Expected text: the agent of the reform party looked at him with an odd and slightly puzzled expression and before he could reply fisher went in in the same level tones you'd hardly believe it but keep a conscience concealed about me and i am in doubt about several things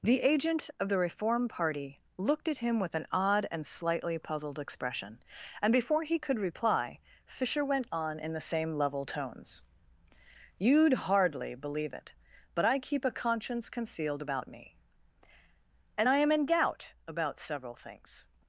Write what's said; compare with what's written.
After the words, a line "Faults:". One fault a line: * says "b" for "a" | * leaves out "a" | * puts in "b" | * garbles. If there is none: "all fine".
the agent of the reform party looked at him with an odd and slightly puzzled expression and before he could reply fisher went on in the same level tones you'd hardly believe it but i keep a conscience concealed about me and i am in doubt about several things
Faults:
* says "on" for "in"
* puts in "i"